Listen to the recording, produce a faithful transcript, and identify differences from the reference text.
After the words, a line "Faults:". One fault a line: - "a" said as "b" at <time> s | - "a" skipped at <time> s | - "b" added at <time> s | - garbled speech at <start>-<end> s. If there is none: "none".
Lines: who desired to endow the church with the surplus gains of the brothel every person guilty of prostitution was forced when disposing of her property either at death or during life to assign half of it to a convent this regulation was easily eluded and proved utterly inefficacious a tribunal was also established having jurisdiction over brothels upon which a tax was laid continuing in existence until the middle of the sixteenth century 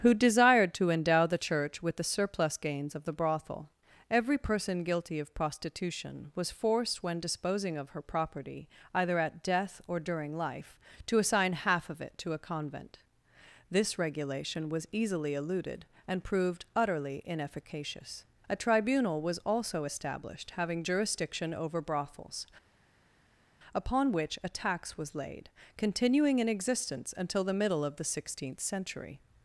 who desired to endow the church with the surplus gains of the brothel every person guilty of prostitution was forced when disposing of her property either at death or during life to assign half of it to a convent this regulation was easily eluded and proved utterly inefficacious a tribunal was also established having jurisdiction over brothels upon which a tax was laid continuing in existence until the middle of the sixteenth century
Faults:
none